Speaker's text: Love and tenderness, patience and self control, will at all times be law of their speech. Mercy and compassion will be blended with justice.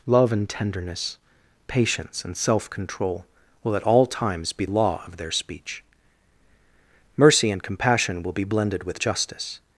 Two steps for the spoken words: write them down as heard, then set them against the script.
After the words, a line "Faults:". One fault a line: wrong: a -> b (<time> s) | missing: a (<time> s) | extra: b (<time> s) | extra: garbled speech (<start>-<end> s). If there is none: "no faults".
Love and tenderness, patience and self control, will at all times be law of their speech. Mercy and compassion will be blended with justice.
Faults:
no faults